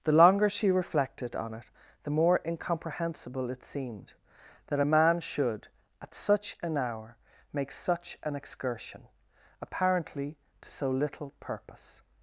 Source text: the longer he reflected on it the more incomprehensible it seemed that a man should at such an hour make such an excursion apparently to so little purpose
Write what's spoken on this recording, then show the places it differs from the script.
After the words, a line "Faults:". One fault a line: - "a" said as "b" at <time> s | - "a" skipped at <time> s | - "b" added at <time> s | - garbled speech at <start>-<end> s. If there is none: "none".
the longer she reflected on it the more incomprehensible it seemed that a man should at such an hour make such an excursion apparently to so little purpose
Faults:
- "he" said as "she" at 0.5 s